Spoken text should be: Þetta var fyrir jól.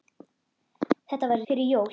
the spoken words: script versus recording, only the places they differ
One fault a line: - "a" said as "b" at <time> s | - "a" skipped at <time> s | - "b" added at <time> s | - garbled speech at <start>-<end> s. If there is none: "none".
none